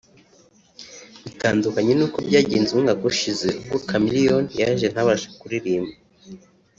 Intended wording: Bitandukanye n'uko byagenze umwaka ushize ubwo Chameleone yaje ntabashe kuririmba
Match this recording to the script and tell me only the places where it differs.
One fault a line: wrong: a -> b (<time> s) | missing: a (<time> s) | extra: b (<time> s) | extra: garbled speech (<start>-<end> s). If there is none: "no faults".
no faults